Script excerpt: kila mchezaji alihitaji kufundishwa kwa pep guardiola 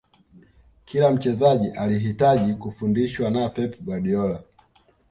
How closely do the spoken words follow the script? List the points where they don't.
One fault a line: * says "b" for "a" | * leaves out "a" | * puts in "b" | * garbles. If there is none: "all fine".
* says "na" for "kwa"